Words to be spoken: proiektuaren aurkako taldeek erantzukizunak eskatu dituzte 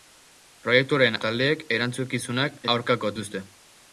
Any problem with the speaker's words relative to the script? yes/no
yes